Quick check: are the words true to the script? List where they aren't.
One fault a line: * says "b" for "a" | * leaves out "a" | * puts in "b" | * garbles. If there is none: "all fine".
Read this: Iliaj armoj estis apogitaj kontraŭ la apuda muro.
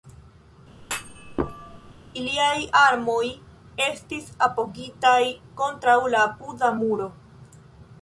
all fine